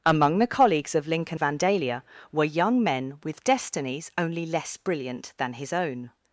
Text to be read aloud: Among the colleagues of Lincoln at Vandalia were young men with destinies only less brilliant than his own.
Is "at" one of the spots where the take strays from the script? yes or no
yes